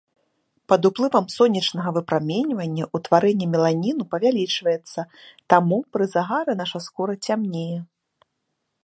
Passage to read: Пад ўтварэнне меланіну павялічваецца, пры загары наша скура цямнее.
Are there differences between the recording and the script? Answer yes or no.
yes